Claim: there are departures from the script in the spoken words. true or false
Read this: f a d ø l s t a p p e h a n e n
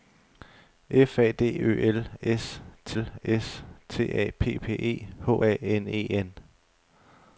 true